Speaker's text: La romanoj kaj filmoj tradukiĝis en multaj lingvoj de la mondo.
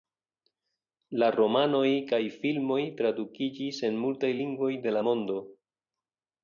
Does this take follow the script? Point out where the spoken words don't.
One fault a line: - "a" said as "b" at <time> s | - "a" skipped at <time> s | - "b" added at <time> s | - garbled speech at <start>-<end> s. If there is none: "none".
none